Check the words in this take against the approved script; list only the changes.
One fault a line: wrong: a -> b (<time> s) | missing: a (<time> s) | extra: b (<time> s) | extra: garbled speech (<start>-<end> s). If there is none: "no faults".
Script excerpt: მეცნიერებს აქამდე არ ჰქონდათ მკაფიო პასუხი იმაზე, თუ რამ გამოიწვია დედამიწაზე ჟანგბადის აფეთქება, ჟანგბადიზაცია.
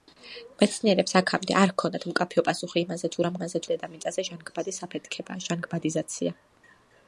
wrong: გამოიწვია -> იმაზე (3.4 s)